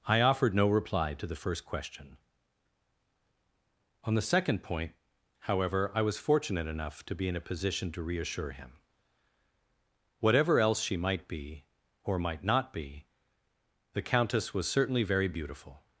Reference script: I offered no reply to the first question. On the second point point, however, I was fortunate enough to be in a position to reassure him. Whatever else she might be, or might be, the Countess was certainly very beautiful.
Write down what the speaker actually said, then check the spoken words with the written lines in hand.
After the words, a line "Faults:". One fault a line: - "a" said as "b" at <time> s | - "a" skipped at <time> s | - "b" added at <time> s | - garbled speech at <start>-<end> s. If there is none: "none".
I offered no reply to the first question. On the second point, however, I was fortunate enough to be in a position to reassure him. Whatever else she might be, or might not be, the Countess was certainly very beautiful.
Faults:
- "point" skipped at 4.9 s
- "not" added at 12.4 s